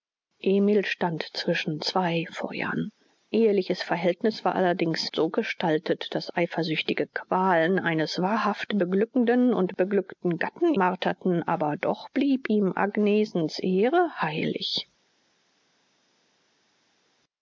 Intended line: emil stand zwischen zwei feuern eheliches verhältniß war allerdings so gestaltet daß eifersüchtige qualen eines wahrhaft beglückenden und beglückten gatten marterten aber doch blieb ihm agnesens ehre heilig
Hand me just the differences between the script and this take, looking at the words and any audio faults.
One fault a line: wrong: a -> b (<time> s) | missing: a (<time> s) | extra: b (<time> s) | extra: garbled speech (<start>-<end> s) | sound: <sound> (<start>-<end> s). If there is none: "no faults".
no faults